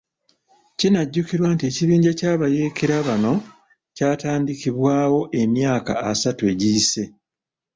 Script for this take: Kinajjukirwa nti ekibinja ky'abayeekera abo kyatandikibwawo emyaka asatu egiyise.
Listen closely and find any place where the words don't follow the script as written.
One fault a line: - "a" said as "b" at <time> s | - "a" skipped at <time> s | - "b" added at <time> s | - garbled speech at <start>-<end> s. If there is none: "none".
- "abo" said as "bano" at 3.1 s